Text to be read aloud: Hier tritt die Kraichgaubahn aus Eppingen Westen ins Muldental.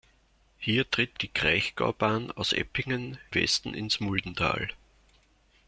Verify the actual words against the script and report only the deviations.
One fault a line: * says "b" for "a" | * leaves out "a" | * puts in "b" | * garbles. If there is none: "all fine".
all fine